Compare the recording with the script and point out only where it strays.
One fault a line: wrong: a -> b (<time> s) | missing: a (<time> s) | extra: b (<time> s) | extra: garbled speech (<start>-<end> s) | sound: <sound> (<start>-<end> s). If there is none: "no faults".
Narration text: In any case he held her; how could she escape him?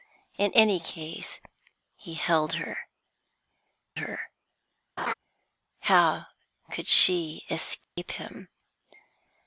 extra: her (3.9 s)
sound: laugh (5.0-5.1 s)
sound: dropout (7.8-8.0 s)